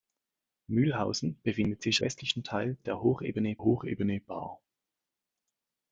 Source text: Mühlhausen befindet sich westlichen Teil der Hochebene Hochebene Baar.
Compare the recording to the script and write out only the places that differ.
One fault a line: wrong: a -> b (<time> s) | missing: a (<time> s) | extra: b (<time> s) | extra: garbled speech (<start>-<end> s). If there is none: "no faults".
no faults